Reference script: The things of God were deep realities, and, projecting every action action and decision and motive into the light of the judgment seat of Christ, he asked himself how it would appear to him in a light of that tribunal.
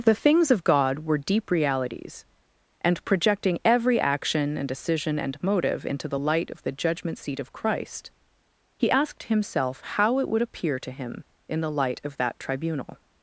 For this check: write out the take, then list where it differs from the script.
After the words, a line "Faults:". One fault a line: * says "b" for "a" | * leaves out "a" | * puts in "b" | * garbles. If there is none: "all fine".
The things of God were deep realities, and, projecting every action and decision and motive into the light of the judgment seat of Christ, he asked himself how it would appear to him in the light of that tribunal.
Faults:
* leaves out "action"
* says "the" for "a"